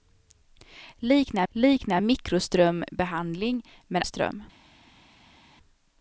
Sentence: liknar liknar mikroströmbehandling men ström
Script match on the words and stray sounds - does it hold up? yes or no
yes